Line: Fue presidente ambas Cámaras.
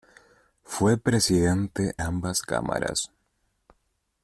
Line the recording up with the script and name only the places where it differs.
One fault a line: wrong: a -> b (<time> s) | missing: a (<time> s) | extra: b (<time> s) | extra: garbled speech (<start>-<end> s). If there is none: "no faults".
no faults